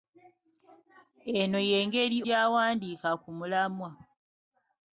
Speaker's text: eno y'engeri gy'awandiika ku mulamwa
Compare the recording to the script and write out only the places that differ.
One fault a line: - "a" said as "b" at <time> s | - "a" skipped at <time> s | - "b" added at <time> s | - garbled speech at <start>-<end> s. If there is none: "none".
none